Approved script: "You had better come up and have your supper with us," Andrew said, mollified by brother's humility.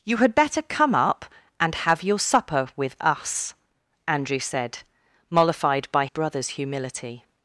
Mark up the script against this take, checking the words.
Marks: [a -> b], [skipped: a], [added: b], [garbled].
"You had better come up and have your supper with us," Andrew said, mollified by brother's humility.